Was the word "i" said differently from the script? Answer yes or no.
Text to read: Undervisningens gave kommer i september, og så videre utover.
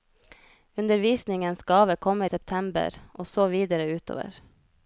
yes